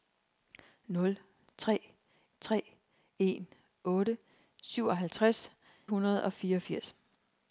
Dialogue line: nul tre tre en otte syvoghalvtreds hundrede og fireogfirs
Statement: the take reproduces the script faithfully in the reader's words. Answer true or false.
true